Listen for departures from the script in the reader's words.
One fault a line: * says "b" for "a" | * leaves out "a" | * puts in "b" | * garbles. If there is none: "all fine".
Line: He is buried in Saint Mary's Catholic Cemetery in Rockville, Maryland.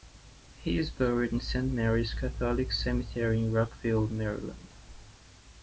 all fine